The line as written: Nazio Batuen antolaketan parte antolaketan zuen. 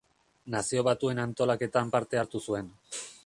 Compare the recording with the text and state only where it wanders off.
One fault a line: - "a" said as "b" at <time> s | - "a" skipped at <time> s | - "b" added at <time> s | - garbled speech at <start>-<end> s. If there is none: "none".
- "antolaketan" said as "hartu" at 2.2 s